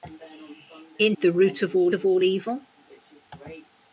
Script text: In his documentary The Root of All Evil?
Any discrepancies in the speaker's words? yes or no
yes